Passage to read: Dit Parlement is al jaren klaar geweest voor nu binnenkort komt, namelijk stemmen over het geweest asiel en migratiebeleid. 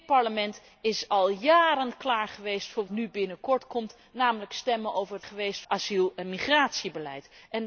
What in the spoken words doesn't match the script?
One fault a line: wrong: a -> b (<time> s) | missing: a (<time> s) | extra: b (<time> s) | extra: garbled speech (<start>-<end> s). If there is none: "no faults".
no faults